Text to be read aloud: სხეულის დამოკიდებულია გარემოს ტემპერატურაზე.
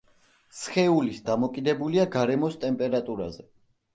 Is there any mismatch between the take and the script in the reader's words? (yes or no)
no